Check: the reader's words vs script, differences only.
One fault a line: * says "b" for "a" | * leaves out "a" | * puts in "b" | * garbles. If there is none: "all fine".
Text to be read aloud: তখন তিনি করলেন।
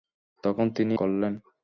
all fine